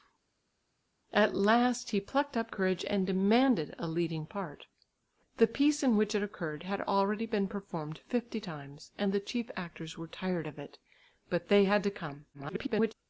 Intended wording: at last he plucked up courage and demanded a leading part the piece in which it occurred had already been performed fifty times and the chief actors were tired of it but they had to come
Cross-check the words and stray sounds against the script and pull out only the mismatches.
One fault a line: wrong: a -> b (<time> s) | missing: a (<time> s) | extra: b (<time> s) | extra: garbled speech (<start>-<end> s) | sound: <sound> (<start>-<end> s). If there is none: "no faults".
extra: garbled speech (12.3-12.9 s)